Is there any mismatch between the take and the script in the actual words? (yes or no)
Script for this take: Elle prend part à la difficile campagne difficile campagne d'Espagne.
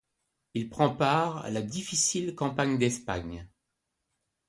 yes